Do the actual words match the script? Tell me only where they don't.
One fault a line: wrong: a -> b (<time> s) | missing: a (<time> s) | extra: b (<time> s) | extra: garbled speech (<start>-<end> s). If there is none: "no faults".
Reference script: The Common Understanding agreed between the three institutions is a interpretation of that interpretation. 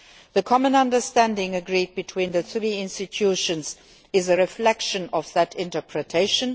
wrong: interpretation -> reflection (4.4 s)